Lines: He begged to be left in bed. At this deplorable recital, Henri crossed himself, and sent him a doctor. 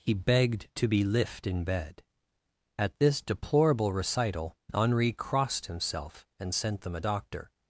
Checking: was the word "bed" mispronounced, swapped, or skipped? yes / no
no